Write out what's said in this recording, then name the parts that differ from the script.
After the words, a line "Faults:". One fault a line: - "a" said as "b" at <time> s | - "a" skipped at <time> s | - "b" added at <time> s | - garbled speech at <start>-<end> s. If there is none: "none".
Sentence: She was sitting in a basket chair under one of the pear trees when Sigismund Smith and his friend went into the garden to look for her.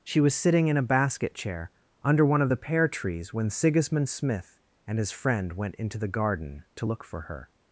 She was sitting in a basket chair under one of the pear trees when Sigismund Smith and his friend went into the garden to look for her.
Faults:
none